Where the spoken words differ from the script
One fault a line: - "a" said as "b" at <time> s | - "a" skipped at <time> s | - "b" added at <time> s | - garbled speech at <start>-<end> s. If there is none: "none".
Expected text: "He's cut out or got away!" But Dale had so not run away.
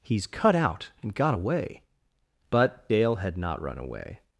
- "or" said as "and" at 1.0 s
- "so" skipped at 3.4 s